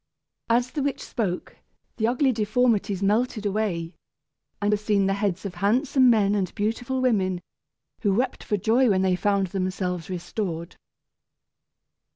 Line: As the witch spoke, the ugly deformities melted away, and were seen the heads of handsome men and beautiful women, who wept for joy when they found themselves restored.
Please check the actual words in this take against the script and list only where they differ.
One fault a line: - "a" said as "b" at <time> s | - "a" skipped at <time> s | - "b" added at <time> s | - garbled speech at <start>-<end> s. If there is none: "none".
none